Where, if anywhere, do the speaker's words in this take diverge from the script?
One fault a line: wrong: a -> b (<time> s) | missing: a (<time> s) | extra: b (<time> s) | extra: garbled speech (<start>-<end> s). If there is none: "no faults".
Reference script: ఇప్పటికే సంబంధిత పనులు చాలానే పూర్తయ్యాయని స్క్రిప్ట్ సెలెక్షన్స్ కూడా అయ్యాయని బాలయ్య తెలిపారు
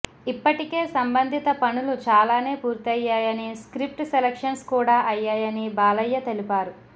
no faults